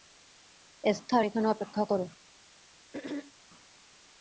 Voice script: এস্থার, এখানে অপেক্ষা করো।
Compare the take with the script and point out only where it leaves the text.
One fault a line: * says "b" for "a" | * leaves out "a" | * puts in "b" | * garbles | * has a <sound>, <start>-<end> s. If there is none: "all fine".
* has a throat clearing, 2.9-3.3 s